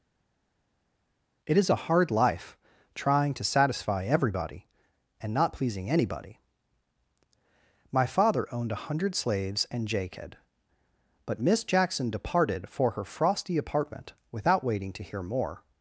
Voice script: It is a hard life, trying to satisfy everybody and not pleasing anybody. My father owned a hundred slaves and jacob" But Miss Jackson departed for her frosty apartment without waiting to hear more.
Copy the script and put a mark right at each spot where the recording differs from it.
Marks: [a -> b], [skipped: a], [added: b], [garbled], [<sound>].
It is a hard life, trying to satisfy everybody and not pleasing anybody. My father owned a hundred slaves and jacob" But Miss Jackson departed for her frosty apartment without waiting to hear more.